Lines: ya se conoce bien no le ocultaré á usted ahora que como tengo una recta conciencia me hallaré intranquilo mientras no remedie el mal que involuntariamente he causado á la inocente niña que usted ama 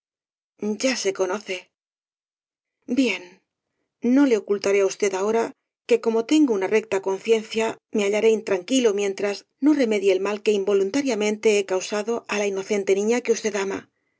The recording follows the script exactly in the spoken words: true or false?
true